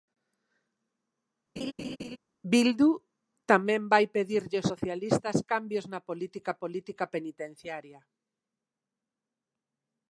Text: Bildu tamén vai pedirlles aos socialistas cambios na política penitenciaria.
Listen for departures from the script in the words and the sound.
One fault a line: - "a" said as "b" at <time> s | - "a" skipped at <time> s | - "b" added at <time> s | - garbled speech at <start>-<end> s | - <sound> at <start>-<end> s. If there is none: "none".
- laugh at 1.6-2.2 s
- "aos" skipped at 4.7 s
- "política" added at 6.6 s